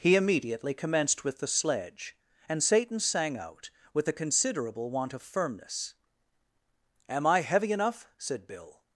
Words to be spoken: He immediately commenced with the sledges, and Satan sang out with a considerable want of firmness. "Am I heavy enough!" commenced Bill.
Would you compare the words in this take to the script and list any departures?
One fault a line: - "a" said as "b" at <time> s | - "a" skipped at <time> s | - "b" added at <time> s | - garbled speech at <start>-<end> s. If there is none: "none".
- "sledges" said as "sledge" at 1.5 s
- "commenced" said as "said" at 8.2 s